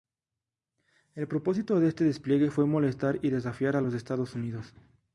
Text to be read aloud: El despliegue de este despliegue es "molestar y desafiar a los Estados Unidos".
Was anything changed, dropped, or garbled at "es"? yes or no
yes